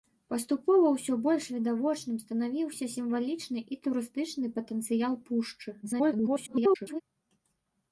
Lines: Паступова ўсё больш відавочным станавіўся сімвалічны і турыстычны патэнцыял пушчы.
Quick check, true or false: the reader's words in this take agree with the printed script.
false